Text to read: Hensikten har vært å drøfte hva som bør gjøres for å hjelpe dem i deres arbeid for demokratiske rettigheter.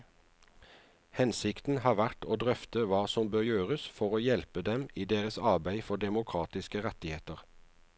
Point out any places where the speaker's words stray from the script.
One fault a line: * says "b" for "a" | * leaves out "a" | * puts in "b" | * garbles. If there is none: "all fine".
all fine